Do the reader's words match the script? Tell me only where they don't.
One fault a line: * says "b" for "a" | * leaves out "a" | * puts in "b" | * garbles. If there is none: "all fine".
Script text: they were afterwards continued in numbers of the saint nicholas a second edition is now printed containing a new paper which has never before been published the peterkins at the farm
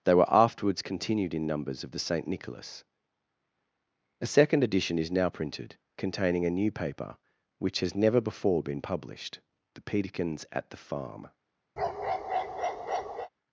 all fine